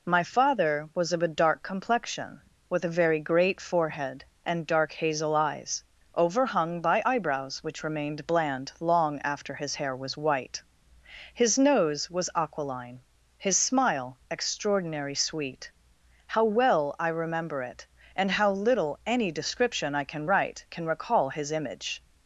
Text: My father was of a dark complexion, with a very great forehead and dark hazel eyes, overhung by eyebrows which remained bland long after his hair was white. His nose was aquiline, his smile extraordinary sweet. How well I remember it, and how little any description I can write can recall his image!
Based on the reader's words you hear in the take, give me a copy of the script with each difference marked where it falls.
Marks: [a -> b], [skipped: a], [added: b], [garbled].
My father was of a dark complexion, with a very great forehead and dark hazel eyes, overhung by eyebrows which remained bland long after his hair was white. His nose was aquiline, his smile extraordinary sweet. How well I remember it, and how little any description I can write can recall his image!